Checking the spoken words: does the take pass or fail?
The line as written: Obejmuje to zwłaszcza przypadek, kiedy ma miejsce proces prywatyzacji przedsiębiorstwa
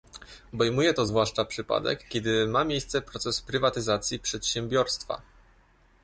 pass